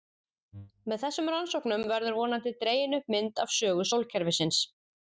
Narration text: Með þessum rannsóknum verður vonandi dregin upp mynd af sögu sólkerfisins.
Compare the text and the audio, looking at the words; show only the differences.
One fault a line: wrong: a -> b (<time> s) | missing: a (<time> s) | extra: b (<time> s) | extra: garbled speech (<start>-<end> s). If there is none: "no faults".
no faults